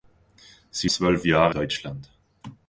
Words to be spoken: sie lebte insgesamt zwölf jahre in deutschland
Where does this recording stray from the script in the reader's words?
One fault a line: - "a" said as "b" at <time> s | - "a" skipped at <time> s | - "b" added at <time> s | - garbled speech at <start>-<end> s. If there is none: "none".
- "lebte insgesamt" skipped at 0.9 s
- "in" skipped at 1.5 s